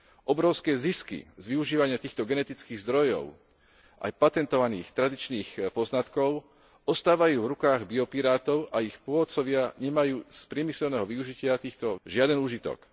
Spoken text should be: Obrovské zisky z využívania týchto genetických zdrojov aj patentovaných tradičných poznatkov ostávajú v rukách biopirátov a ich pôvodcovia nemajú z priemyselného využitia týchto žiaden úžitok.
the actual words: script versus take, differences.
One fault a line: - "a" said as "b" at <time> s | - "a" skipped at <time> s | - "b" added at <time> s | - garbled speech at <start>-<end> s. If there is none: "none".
none